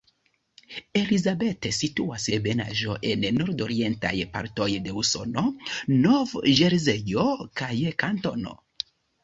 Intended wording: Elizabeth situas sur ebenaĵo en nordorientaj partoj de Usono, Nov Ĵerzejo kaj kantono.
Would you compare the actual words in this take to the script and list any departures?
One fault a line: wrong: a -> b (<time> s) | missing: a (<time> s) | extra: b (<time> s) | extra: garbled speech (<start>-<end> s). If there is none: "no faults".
missing: sur (2.2 s)